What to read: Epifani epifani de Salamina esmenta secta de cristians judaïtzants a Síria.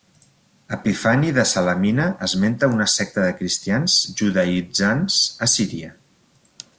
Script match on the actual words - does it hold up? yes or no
no